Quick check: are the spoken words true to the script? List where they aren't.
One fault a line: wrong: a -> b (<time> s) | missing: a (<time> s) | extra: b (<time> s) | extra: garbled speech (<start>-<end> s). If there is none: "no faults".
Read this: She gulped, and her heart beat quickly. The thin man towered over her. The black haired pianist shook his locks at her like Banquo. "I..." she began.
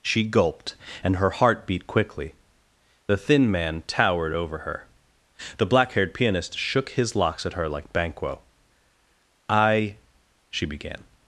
no faults